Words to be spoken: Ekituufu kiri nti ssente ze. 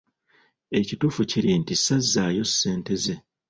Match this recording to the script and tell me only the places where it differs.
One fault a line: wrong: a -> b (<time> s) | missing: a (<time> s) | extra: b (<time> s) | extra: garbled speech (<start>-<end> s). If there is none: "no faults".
extra: sazzaayo (1.8 s)